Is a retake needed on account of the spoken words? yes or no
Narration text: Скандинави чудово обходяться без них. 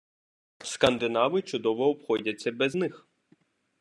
no